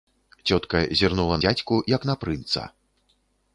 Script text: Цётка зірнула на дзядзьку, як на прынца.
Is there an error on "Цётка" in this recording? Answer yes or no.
no